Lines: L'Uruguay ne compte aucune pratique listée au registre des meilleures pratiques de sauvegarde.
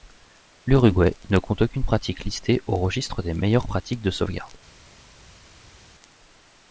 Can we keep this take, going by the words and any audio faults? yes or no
yes